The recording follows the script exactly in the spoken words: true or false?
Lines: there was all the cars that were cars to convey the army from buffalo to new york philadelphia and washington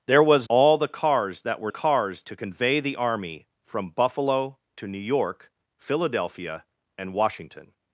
true